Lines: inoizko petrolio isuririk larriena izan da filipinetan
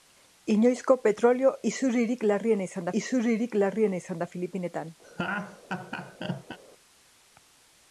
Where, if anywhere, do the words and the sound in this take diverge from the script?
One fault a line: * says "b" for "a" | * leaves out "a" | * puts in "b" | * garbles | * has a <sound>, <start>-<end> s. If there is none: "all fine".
* puts in "isuririk larriena izan"
* has a laugh, 5.0-6.6 s